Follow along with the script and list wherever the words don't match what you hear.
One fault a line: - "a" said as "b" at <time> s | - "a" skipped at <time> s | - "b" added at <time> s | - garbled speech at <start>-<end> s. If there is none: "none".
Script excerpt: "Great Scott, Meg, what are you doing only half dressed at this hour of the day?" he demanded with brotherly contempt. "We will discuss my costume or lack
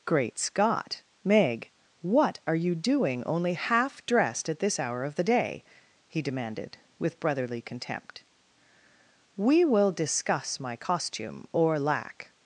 none